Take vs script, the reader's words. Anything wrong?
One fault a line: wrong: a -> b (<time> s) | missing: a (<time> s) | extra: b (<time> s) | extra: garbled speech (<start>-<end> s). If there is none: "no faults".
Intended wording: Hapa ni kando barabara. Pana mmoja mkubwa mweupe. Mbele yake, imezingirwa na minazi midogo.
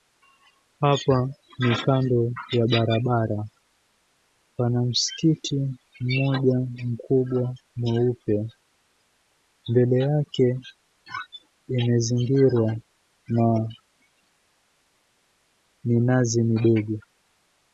extra: ya (2.5 s)
extra: msikiti (4.8 s)